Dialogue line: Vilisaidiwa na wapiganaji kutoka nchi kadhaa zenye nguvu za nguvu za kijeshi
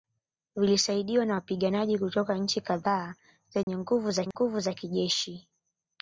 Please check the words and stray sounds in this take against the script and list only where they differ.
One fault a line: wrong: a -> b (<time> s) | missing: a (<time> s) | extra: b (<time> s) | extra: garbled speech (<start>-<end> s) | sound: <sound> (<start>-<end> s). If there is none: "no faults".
sound: dropout (3.6-3.7 s)
sound: dropout (4.3-4.3 s)